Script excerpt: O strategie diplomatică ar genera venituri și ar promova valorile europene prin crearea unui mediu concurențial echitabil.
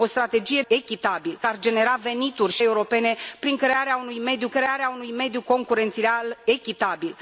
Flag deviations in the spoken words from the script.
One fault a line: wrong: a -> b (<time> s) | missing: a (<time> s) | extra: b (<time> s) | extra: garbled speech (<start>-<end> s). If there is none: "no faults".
wrong: diplomatică -> echitabil (0.7 s)
wrong: ar promova valorile europene prin -> europene prin crearea unui mediu (2.6 s)